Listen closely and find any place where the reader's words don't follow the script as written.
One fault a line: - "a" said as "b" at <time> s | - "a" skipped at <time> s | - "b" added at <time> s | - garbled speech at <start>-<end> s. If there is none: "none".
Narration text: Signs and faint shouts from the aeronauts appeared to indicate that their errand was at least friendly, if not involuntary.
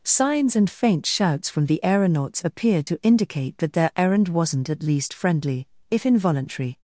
- "was" said as "wasn't" at 4.3 s
- "not" skipped at 6.1 s